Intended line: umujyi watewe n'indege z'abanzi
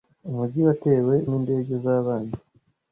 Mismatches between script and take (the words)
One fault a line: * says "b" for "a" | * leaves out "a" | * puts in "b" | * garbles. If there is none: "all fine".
all fine